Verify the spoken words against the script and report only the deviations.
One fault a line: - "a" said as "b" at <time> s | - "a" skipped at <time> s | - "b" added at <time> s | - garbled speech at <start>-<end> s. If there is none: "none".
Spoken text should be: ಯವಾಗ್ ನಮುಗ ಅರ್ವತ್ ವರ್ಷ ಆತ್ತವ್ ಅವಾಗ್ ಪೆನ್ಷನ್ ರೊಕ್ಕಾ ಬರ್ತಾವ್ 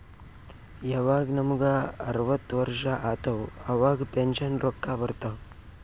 none